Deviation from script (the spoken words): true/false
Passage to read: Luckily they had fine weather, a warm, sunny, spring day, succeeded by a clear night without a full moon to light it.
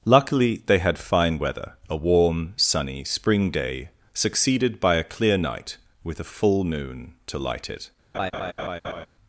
true